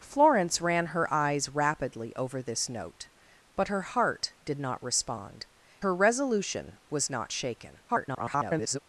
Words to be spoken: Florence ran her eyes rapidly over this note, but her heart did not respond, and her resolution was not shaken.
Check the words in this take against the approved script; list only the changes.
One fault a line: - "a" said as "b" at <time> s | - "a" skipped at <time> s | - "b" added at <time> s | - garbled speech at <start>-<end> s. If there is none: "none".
- "and" skipped at 5.5 s
- garbled speech at 7.9-8.8 s